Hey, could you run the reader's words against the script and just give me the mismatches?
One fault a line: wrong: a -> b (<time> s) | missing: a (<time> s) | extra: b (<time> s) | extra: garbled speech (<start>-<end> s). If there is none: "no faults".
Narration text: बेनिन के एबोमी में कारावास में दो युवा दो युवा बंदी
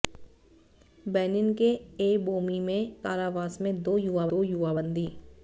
no faults